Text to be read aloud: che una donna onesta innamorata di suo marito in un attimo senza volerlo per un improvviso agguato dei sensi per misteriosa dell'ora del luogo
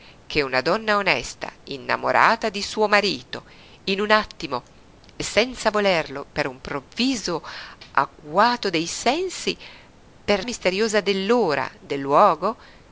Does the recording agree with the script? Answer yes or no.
yes